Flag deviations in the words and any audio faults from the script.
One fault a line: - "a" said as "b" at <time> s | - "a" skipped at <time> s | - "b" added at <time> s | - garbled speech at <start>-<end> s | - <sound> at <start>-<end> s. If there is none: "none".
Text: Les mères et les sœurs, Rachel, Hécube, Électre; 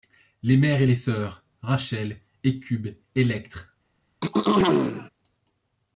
- throat clearing at 4.2-5.1 s